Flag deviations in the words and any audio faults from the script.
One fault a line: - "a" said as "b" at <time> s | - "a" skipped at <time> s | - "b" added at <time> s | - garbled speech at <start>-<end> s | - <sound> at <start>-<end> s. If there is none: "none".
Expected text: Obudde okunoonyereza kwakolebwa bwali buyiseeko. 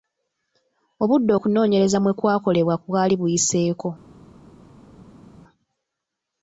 - "mwe" added at 2.0 s